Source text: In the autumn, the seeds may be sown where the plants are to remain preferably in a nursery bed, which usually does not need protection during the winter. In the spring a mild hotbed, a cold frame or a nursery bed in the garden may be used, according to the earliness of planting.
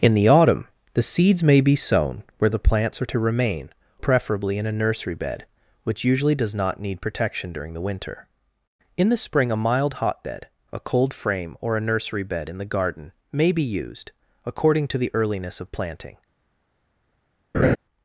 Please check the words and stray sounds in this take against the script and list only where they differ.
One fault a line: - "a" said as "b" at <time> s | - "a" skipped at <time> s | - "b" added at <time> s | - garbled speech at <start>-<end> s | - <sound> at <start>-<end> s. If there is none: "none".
- laugh at 17.5-17.8 s